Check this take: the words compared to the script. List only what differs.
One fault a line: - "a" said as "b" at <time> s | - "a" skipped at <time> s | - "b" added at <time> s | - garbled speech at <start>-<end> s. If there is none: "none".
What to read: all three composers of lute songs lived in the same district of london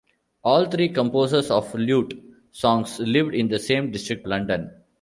- "of" skipped at 4.3 s